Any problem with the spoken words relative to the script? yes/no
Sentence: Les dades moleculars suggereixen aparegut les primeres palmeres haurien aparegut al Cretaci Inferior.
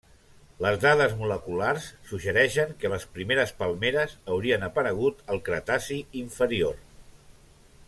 yes